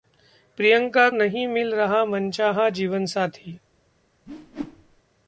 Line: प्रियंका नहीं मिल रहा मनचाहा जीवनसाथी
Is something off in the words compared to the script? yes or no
no